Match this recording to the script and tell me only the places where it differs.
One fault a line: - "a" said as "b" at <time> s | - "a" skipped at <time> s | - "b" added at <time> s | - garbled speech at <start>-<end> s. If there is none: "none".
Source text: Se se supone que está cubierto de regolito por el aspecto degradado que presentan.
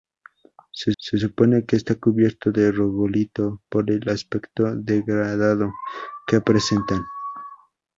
none